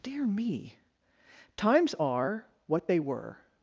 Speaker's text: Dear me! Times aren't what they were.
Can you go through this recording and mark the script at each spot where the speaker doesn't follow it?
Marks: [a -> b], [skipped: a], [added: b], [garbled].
Dear me! Times [aren't -> are] what they were.